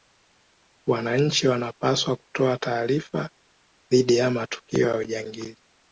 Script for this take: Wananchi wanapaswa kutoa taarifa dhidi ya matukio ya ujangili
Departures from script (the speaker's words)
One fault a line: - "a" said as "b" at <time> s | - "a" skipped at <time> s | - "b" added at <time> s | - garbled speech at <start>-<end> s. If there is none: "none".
none